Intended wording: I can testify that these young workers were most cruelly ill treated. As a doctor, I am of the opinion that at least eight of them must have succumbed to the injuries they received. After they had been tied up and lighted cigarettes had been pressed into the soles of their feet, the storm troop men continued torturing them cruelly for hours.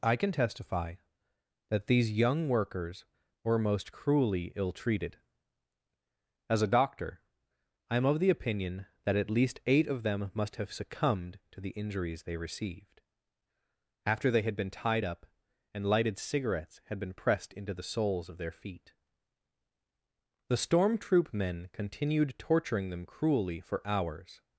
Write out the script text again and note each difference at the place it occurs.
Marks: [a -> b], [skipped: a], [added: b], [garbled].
I can testify that these young workers were most cruelly ill treated. As a doctor, I am of the opinion that at least eight of them must have succumbed to the injuries they received. After they had been tied up and lighted cigarettes had been pressed into the soles of their feet, the storm troop men continued torturing them cruelly for hours.